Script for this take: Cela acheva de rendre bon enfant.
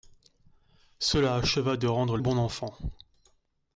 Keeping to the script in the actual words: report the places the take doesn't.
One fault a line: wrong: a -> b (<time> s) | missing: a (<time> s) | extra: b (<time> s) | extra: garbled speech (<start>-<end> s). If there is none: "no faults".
no faults